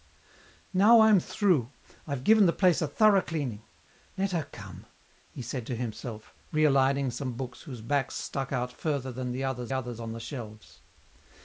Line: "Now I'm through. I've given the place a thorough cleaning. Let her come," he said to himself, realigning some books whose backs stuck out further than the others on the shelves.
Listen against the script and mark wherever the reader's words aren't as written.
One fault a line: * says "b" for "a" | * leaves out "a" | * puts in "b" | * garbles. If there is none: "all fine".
* puts in "others"